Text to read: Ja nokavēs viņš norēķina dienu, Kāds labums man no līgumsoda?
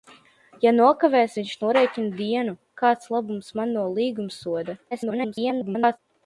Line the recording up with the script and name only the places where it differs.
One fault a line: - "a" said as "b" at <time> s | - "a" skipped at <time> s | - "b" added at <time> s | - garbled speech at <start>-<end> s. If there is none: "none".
- garbled speech at 4.9-6.0 s